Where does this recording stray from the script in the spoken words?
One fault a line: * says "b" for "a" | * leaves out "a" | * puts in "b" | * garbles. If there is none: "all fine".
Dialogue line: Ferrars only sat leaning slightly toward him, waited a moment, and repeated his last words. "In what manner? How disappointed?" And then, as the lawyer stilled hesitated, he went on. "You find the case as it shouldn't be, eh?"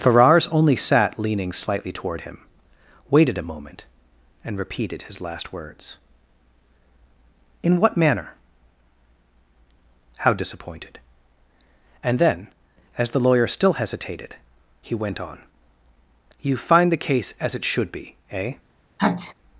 * says "still" for "stilled"
* says "should" for "shouldn't"